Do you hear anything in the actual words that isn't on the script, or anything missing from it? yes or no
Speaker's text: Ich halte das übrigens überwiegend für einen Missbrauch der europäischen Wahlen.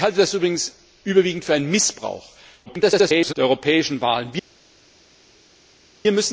yes